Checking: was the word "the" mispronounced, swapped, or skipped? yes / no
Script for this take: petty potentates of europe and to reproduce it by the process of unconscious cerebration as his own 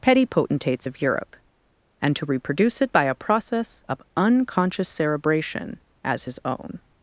yes